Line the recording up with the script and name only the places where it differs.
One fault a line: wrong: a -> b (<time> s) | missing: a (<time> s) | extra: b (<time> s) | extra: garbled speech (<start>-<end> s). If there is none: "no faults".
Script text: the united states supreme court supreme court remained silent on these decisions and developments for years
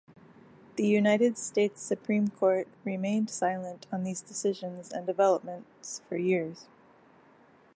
missing: supreme court (2.7 s)